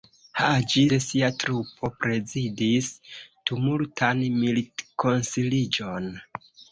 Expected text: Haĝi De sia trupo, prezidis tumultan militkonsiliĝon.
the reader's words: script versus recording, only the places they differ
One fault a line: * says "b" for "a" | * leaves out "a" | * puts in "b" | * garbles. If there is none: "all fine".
all fine